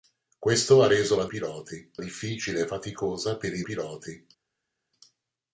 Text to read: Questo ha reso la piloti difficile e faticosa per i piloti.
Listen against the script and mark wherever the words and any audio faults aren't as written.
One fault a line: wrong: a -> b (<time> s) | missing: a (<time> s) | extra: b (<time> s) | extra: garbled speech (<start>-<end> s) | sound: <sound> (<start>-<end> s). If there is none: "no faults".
no faults